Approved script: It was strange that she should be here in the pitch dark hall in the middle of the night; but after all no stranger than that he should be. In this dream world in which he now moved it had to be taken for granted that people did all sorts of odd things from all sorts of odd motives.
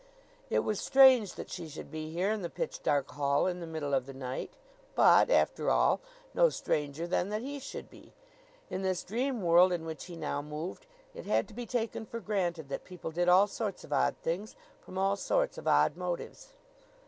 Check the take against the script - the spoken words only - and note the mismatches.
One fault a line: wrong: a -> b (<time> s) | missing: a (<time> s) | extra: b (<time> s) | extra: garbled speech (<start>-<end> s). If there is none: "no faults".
no faults